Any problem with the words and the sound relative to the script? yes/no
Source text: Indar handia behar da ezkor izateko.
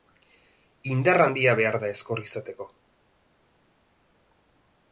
no